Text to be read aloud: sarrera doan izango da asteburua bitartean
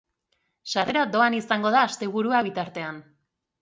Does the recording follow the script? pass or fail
pass